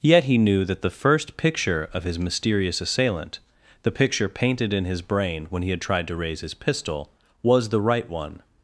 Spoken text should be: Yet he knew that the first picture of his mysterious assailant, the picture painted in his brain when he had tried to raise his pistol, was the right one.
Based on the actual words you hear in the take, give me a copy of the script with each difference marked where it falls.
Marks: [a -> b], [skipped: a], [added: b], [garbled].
Yet he knew that the first picture of his mysterious assailant, the picture painted in his brain when he had tried to raise his pistol, was the right one.